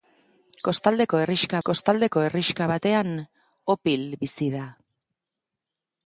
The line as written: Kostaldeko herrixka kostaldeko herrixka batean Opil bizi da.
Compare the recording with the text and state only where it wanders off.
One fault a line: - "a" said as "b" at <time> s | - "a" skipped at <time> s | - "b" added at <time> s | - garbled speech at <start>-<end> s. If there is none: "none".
none